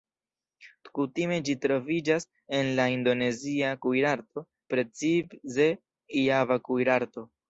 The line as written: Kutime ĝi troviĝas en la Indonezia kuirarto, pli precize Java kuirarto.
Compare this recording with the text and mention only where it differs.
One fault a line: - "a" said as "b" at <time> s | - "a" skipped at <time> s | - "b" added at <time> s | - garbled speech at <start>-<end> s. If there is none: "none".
- "pli" skipped at 4.5 s